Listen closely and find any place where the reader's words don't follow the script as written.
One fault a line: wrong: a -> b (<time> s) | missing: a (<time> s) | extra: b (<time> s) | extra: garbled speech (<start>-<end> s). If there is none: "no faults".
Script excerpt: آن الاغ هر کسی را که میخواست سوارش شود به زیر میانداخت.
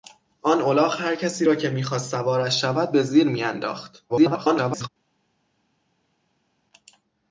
extra: garbled speech (4.1-4.9 s)